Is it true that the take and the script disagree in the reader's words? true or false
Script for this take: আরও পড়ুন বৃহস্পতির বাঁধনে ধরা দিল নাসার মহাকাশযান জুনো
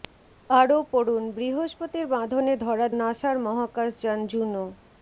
true